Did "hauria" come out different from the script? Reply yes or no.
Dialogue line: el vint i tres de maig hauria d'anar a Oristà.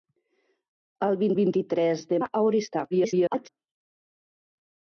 yes